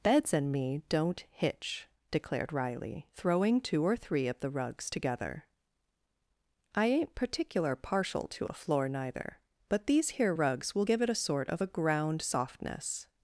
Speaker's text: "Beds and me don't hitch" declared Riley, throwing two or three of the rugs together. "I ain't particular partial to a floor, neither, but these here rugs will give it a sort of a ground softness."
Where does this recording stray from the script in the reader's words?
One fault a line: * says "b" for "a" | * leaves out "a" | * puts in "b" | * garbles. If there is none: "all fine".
all fine